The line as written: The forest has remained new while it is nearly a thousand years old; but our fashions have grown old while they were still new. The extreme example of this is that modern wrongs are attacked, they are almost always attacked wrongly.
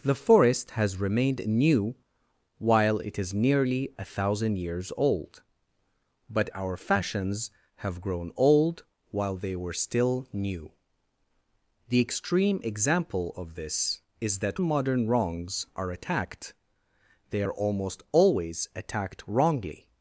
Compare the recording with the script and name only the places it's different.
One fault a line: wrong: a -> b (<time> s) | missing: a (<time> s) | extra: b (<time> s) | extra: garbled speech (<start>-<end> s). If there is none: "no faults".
no faults